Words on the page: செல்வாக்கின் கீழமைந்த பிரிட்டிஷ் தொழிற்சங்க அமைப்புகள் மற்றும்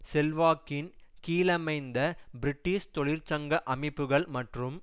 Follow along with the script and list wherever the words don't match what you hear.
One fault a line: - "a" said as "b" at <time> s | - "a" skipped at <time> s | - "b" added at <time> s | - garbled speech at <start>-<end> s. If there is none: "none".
none